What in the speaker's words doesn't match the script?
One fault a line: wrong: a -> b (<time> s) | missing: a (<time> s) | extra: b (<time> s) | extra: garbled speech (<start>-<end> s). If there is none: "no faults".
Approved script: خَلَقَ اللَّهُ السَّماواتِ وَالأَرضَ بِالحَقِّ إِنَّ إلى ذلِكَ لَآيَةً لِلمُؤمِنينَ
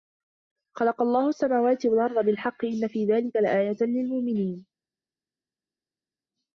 wrong: إلى -> في (2.9 s)